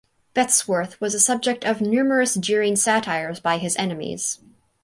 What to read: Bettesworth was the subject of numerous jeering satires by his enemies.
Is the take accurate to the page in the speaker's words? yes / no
yes